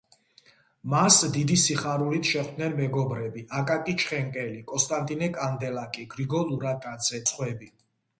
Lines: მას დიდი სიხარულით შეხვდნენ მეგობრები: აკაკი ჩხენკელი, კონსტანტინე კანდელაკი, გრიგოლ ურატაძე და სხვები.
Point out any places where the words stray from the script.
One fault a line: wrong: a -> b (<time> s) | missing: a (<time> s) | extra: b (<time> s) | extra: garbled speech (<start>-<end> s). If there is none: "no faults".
missing: და (7.2 s)